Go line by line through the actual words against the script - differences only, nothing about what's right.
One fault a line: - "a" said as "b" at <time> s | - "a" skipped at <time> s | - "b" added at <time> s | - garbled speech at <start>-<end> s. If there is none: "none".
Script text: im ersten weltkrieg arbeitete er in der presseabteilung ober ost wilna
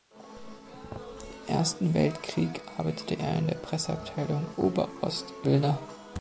none